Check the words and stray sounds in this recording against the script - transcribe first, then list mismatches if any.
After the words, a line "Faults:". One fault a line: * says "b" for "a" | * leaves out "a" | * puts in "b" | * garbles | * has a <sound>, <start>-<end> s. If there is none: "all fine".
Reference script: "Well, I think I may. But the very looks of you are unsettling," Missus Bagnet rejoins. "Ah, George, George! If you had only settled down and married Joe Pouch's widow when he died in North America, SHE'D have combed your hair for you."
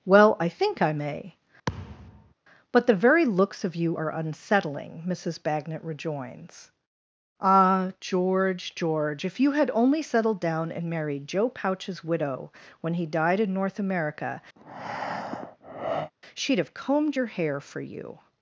"Well, I think I may. But the very looks of you are unsettling," Missus Bagnet rejoins. "Ah, George, George! If you had only settled down and married Joe Pouch's widow when he died in North America, SHE'D have combed your hair for you."
Faults:
* has a thud, 1.7-2.3 s
* has a breath, 14.6-16.1 s